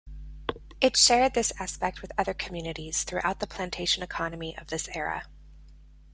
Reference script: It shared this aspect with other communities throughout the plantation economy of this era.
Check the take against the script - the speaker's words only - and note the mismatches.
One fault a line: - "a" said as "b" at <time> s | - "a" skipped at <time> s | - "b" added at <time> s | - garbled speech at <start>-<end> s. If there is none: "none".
none